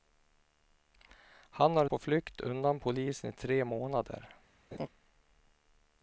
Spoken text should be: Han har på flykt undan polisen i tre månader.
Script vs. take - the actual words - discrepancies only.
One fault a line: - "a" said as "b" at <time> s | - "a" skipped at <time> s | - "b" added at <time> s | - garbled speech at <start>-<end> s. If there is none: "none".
none